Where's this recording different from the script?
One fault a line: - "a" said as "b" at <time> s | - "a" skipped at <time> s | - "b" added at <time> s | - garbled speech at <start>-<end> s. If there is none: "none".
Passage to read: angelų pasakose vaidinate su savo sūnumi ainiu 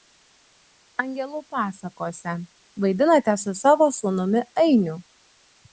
none